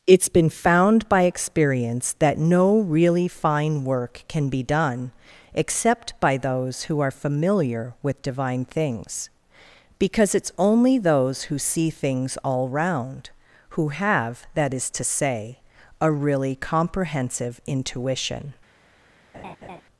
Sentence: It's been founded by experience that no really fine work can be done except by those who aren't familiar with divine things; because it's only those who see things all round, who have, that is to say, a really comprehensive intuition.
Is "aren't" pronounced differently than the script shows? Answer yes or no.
yes